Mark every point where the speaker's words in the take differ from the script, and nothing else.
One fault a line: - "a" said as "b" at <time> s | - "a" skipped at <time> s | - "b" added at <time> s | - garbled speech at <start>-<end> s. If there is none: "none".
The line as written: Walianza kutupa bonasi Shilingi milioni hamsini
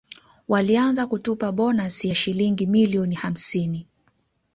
- "ya" added at 2.0 s